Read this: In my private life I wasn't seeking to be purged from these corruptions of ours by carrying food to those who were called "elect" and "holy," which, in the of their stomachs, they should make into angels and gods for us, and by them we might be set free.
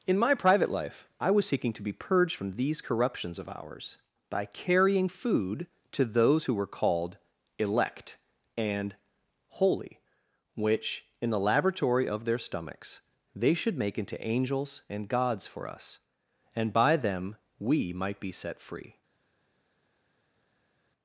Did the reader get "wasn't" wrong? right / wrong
wrong